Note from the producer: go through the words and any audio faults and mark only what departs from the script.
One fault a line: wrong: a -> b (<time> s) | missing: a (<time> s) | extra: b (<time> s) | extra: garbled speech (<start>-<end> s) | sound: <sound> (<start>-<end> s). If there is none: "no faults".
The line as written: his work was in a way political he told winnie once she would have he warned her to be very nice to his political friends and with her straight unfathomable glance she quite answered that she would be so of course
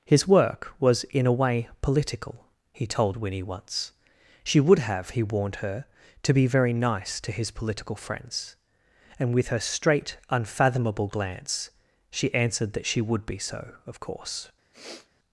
missing: quite (12.3 s)
sound: sniff (14.7-15.1 s)